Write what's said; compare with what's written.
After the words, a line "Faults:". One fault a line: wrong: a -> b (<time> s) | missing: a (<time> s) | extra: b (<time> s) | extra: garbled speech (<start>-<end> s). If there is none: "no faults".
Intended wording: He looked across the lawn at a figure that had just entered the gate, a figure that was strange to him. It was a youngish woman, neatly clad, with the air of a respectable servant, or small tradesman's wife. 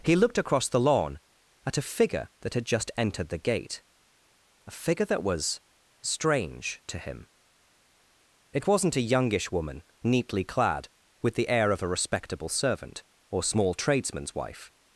He looked across the lawn at a figure that had just entered the gate, a figure that was strange to him. It wasn't a youngish woman, neatly clad, with the air of a respectable servant, or small tradesman's wife.
Faults:
wrong: was -> wasn't (8.7 s)